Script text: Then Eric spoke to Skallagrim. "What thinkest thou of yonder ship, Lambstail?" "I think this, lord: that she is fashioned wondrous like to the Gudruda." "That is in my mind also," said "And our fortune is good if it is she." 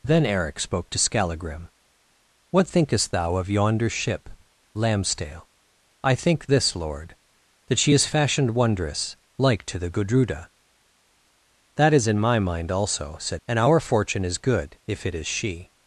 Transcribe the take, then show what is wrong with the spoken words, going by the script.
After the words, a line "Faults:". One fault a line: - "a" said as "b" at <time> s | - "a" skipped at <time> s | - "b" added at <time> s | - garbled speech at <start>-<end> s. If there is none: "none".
Then Eric spoke to Skallagrim. "What thinkest thou of yonder ship, Lambstail?" "I think this, lord: that she is fashioned wondrous like to the Gudruda." "That is in my mind also," said "And our fortune is good if it is she."
Faults:
none